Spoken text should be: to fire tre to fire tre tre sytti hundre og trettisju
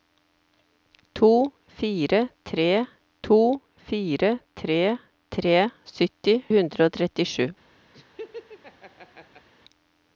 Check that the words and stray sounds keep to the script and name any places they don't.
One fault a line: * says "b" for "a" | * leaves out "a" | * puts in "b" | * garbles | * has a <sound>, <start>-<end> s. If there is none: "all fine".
* has a laugh, 7.9-9.5 s